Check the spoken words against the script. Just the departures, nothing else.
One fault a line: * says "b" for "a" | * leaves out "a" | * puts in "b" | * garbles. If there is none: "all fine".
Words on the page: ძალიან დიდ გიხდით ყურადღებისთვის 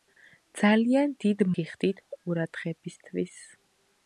all fine